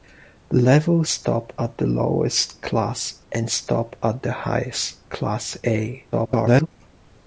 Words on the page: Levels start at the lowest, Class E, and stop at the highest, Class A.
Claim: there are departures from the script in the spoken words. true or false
true